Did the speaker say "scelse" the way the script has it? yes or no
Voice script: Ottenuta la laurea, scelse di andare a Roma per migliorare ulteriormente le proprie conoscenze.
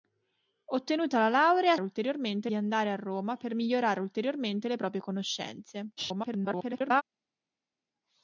no